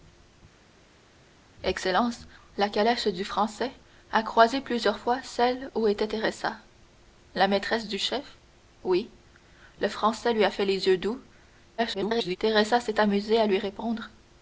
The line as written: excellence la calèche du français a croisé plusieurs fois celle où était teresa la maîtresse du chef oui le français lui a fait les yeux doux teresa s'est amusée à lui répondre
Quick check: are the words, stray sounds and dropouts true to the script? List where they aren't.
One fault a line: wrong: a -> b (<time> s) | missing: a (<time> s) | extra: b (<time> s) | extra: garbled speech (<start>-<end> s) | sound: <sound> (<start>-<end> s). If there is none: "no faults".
extra: garbled speech (11.8-12.4 s)